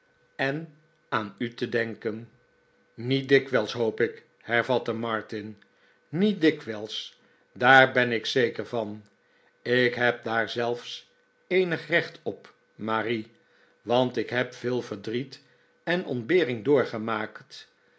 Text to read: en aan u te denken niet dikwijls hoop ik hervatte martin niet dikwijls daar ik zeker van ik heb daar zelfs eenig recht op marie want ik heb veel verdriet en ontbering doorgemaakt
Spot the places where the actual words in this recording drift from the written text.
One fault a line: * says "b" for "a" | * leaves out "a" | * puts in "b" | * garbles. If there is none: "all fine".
* puts in "ben"